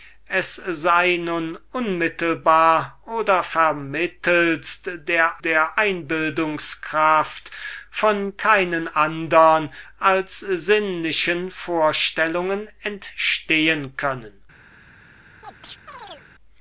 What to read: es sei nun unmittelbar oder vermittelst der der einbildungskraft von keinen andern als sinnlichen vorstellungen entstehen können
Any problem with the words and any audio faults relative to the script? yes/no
yes